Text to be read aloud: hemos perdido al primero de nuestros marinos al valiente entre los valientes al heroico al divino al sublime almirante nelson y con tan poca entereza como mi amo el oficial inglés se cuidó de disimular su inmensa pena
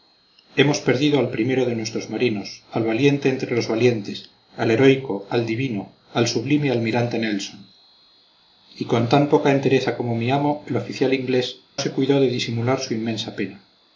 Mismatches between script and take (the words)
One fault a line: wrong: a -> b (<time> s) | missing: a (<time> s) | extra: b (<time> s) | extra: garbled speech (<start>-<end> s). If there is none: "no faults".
no faults